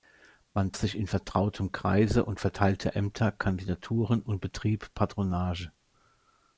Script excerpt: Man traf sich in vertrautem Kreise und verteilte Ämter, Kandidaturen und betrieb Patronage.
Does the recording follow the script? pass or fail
fail